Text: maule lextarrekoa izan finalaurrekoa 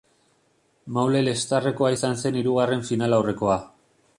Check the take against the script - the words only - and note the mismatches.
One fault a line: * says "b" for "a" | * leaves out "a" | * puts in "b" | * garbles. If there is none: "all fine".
* puts in "zen hirugarren"